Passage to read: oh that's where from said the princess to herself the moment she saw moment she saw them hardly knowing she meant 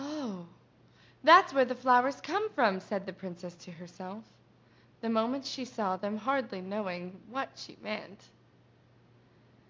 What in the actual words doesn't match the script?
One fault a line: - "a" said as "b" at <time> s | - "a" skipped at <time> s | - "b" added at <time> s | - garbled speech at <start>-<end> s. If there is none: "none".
- "the flowers come" added at 1.6 s
- "moment she saw" skipped at 6.0 s
- "what" added at 7.3 s